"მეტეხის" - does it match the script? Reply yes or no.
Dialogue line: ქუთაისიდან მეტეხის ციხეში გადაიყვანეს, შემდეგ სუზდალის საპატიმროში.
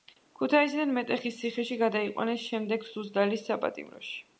yes